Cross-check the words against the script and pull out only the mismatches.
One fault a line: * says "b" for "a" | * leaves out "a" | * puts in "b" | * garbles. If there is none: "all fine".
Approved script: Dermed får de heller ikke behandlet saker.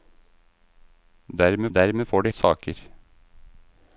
* puts in "dermed"
* leaves out "heller ikke behandlet"